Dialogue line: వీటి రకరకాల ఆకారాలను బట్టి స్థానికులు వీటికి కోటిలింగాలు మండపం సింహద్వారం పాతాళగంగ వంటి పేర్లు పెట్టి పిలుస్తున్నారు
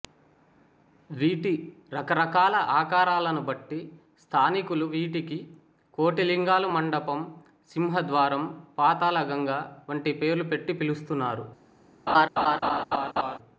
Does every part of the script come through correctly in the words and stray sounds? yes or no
no